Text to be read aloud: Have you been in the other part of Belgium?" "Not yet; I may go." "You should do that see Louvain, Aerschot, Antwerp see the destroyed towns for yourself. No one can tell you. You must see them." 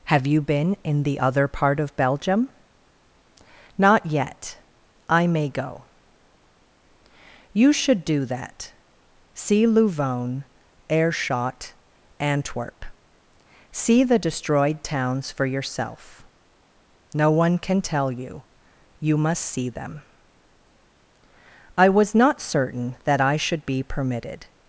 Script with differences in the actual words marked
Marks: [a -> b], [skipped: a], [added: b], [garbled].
Have you been in the other part of Belgium?" "Not yet; I may go." "You should do that see Louvain, Aerschot, Antwerp see the destroyed towns for yourself. No one can tell you. You must see them." [added: I was not certain that I should be permitted]